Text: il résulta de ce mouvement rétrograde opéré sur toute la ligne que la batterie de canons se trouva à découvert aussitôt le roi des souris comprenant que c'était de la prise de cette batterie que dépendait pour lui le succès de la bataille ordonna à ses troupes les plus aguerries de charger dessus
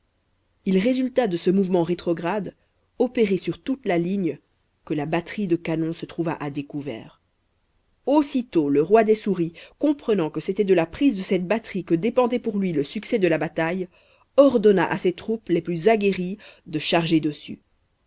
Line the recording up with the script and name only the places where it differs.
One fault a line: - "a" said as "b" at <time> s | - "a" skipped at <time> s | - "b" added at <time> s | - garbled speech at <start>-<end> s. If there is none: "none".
none